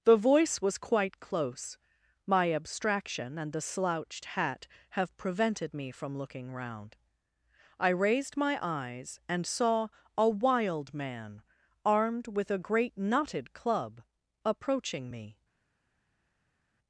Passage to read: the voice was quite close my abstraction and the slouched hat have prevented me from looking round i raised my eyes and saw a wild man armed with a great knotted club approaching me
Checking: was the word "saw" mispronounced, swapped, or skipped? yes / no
no